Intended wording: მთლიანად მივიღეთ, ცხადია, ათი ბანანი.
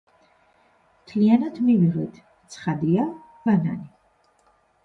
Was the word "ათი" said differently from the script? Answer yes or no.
yes